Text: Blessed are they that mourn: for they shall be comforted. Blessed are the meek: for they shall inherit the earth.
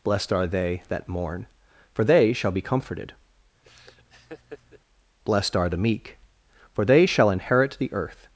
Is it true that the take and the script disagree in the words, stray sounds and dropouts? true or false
true